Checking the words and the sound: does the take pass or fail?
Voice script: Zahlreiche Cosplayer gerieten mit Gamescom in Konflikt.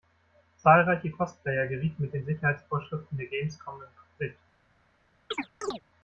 fail